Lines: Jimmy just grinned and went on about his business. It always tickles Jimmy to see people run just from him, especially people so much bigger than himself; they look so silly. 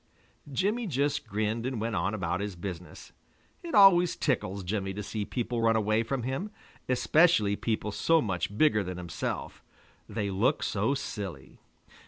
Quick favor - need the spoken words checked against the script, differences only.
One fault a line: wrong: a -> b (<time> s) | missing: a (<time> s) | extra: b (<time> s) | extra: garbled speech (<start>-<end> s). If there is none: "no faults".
wrong: just -> away (5.7 s)